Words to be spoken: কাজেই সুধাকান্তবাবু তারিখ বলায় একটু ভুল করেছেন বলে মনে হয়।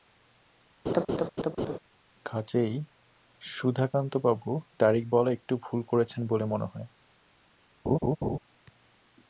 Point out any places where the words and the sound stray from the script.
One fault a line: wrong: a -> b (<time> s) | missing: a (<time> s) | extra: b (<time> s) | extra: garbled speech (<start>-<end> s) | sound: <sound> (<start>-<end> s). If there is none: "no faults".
sound: laugh (0.9-1.8 s)
sound: laugh (7.9-8.4 s)